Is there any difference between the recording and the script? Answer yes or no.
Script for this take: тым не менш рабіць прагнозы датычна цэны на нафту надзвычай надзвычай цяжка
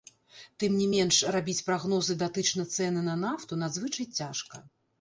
yes